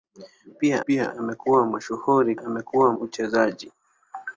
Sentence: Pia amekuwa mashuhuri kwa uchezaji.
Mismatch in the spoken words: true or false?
true